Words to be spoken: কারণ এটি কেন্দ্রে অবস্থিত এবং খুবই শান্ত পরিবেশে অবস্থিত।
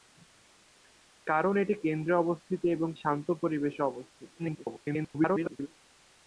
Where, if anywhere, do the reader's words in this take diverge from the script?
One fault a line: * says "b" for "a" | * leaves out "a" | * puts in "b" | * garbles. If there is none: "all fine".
* leaves out "খুবই"
* garbles